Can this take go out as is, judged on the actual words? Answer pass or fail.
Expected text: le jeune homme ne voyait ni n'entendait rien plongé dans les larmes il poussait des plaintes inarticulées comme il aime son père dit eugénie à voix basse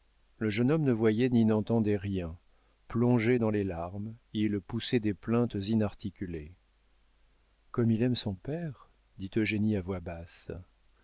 pass